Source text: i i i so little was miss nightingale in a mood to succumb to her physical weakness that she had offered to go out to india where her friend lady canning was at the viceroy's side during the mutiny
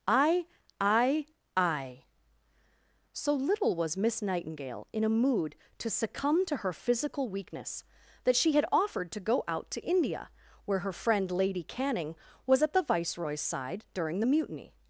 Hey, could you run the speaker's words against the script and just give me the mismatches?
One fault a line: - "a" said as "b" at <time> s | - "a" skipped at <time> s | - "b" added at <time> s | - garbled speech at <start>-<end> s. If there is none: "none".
none